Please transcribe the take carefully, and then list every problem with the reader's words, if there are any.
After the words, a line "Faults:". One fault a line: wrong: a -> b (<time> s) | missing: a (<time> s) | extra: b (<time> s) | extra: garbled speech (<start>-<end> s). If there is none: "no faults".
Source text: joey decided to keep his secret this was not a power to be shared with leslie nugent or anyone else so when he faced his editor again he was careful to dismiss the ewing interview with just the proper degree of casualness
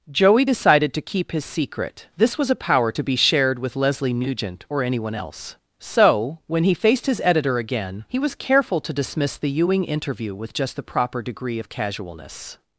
joey decided to keep his secret this was a power to be shared with leslie nugent or anyone else so when he faced his editor again he was careful to dismiss the ewing interview with just the proper degree of casualness
Faults:
missing: not (2.5 s)